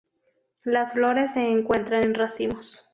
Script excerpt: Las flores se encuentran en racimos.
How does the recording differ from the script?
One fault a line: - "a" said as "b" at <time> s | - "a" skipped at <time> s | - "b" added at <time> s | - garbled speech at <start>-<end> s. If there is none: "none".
none